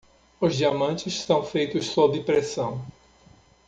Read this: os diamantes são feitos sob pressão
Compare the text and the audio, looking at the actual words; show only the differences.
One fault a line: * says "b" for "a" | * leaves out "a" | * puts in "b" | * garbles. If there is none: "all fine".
all fine